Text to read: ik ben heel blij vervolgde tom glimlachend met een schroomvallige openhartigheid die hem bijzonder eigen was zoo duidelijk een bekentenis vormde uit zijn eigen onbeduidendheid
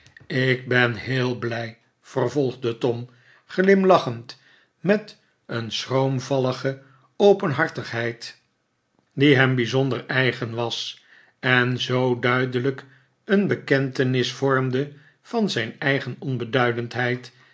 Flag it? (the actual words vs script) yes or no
yes